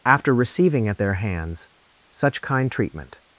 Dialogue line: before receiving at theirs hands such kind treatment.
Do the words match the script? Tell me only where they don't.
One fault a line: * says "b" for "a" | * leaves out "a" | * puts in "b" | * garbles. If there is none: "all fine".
* says "after" for "before"
* says "their" for "theirs"